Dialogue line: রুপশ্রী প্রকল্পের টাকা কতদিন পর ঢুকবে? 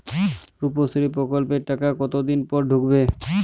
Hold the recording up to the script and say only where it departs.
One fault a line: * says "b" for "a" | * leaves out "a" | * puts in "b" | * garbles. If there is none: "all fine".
all fine